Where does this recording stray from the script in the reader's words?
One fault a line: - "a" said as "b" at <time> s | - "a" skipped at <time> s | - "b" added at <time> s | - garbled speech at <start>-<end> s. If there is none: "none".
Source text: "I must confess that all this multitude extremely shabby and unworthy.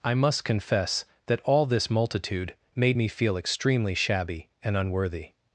- "made me feel" added at 2.7 s